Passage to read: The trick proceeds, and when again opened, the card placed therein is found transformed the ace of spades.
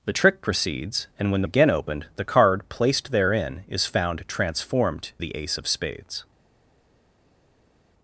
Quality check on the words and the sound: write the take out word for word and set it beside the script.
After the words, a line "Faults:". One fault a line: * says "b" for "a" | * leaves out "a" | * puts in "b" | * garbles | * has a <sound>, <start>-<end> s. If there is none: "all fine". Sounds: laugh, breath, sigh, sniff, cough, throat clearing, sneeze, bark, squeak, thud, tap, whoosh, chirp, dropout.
The trick proceeds, and when again opened, the card placed therein is found transformed the ace of spades.
Faults:
all fine